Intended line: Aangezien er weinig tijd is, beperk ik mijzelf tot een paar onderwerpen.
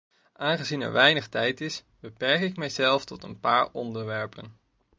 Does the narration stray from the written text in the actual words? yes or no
no